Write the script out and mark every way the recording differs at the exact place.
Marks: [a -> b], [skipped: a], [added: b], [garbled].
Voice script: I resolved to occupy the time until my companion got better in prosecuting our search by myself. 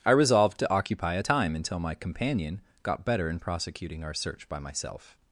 I resolved to occupy [the -> a] time until my companion got better in prosecuting our search by myself.